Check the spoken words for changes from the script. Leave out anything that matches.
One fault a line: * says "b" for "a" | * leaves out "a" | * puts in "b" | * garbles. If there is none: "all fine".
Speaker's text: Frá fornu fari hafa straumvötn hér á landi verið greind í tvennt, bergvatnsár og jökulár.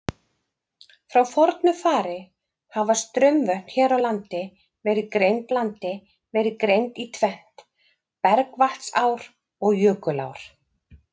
* puts in "landi verið greind"